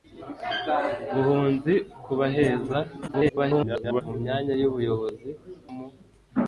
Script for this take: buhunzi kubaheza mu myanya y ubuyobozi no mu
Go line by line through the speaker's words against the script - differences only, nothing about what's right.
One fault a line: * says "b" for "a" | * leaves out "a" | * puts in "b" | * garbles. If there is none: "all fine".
* garbles
* leaves out "no"